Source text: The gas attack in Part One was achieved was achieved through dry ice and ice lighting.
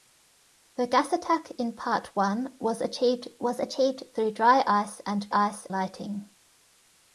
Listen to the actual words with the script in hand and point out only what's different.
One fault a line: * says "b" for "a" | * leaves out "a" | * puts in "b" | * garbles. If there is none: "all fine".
all fine